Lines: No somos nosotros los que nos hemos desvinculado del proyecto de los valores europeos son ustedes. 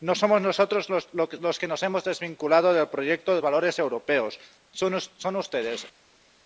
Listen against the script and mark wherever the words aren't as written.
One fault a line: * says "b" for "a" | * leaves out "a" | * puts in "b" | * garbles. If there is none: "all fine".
* leaves out "los"